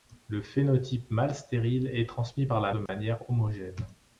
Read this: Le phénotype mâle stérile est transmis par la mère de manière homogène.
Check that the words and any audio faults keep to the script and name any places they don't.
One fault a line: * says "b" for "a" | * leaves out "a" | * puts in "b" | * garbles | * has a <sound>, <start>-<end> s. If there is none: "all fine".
* leaves out "mère"
* has a dropout, 2.9-2.9 s